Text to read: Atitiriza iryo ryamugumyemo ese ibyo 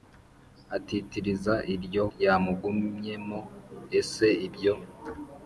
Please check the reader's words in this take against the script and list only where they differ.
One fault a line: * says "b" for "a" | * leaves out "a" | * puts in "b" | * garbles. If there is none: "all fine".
all fine